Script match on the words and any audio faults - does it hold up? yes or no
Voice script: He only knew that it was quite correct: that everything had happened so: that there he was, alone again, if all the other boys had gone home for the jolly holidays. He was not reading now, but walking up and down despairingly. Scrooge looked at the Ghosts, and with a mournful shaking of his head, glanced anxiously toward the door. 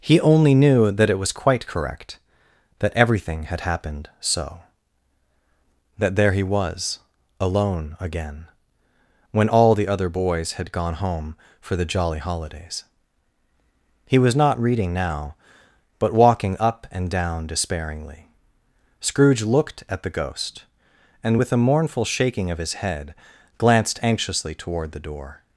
no